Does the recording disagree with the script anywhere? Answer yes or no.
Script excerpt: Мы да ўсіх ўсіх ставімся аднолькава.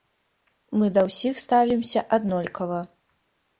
yes